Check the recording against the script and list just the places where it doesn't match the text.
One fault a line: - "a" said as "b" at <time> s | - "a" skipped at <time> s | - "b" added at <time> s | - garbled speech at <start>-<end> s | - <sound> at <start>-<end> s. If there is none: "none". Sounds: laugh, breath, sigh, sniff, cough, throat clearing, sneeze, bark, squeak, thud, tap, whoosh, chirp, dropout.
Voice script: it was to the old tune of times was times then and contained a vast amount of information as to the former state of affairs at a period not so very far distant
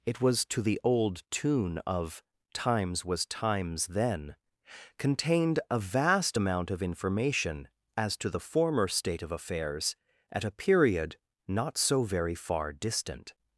- "and" skipped at 4.3 s